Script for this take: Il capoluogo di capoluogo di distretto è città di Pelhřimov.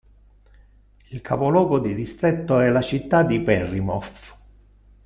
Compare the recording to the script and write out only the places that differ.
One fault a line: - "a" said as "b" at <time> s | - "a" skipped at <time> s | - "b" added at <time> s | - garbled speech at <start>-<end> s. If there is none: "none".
- "capoluogo di" skipped at 1.9 s
- "la" added at 2.7 s